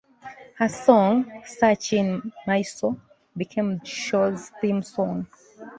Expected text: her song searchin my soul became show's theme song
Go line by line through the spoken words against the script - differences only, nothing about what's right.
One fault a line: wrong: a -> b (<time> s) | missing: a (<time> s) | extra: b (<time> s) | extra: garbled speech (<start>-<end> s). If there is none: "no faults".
no faults